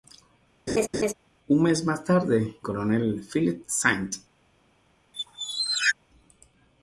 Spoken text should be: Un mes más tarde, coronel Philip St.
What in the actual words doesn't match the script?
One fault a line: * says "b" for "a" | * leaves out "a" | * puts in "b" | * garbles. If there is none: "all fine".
all fine